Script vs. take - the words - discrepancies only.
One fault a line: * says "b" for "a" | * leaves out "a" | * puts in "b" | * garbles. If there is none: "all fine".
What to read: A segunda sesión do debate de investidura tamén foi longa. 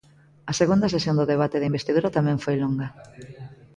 all fine